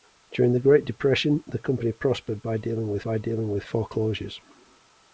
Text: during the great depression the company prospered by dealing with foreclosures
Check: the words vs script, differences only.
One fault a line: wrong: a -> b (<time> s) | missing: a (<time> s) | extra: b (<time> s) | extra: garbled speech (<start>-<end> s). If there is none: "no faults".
extra: by dealing with (3.0 s)